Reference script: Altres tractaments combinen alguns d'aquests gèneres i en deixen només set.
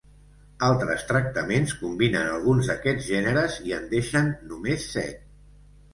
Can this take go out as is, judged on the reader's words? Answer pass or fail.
pass